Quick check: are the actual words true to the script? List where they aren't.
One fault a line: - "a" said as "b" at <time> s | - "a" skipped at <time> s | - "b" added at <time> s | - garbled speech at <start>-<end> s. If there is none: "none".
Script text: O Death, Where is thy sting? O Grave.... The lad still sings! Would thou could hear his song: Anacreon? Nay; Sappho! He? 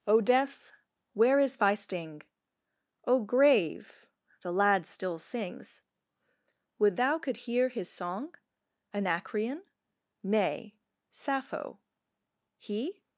none